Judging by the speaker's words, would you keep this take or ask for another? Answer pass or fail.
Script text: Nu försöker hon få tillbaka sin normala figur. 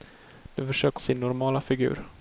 fail